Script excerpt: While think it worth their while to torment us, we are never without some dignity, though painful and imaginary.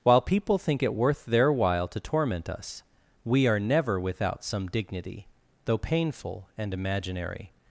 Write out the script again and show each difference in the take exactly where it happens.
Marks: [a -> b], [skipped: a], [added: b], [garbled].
While [added: people] think it worth their while to torment us, we are never without some dignity, though painful and imaginary.